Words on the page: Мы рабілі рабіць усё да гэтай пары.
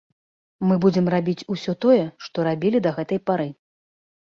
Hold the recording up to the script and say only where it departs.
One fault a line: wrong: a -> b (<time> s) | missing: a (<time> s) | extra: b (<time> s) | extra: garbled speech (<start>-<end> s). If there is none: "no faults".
wrong: рабілі -> будзем (0.8 s)
extra: тое што рабілі (1.9 s)